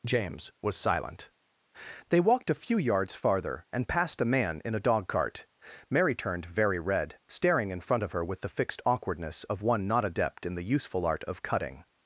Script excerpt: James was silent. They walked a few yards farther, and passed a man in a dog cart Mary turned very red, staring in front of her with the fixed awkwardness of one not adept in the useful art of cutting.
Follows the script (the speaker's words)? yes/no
yes